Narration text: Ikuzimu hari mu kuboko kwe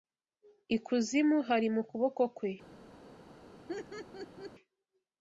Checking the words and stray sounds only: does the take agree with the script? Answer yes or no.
no